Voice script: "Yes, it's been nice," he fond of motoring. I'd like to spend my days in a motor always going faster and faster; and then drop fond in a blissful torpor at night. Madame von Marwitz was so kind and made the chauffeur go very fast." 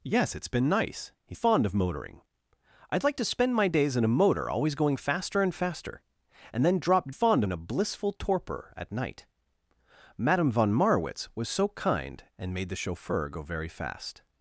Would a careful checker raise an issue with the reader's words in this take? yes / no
no